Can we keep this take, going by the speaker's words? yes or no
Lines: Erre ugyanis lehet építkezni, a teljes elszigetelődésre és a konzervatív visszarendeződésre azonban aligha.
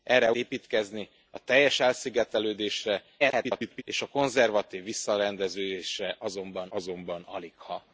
no